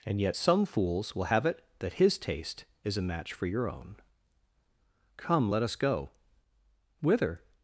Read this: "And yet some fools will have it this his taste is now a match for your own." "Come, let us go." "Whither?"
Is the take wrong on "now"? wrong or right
wrong